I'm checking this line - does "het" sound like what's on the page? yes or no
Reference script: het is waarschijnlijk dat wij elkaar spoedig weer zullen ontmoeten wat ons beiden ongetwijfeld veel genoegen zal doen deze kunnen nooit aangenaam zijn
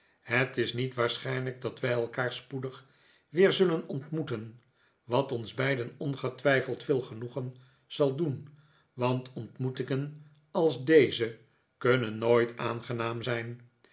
yes